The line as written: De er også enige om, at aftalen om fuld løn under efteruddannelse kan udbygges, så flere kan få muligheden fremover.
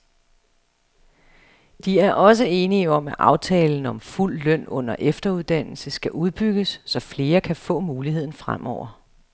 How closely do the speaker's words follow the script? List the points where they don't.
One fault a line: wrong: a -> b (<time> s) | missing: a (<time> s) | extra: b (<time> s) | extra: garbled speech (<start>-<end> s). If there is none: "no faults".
wrong: kan -> skal (5.9 s)